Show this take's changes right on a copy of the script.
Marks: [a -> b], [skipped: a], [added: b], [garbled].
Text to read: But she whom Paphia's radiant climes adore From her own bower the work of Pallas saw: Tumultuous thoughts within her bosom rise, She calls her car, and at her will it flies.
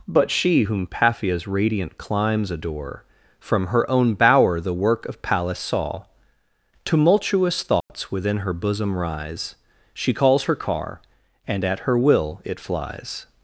But she whom Paphia's radiant climes adore From her own bower the work of Pallas saw: Tumultuous thoughts within her bosom rise, She calls her car, and at her will it flies.